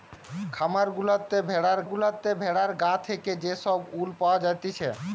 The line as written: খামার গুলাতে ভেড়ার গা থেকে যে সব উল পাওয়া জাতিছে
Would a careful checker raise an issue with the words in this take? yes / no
yes